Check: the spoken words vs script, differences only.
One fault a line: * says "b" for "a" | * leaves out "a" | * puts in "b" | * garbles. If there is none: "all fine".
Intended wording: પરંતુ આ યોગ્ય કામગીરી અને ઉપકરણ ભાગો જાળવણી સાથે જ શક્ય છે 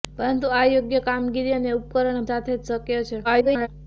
* leaves out "ભાગો જાળવણી"
* garbles